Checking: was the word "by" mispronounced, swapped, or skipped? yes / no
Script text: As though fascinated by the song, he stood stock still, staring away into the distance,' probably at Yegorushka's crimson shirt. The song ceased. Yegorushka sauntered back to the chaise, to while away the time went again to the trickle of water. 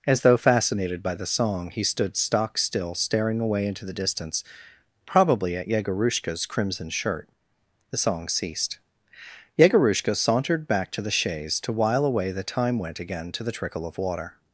no